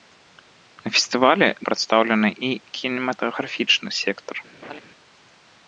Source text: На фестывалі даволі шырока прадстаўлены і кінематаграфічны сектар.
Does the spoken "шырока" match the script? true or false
false